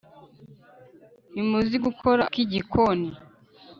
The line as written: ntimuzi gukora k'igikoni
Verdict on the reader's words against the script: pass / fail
pass